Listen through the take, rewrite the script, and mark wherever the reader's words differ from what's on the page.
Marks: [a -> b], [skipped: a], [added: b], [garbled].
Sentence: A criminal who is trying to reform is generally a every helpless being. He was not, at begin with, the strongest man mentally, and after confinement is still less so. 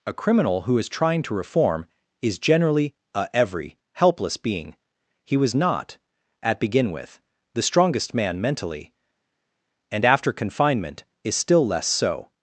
A criminal who is trying to reform is generally a every helpless being. He was not, at begin with, the strongest man mentally, and after confinement is still less so.